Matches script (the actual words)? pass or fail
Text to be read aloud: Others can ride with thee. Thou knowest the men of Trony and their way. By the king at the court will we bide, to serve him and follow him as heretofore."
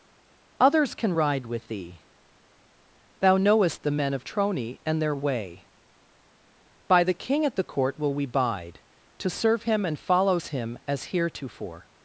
fail